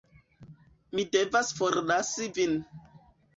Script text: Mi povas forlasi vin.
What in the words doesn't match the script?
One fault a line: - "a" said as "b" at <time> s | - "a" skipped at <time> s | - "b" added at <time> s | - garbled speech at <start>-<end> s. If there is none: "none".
- "povas" said as "devas" at 1.2 s